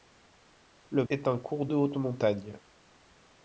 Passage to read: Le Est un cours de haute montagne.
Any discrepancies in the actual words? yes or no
no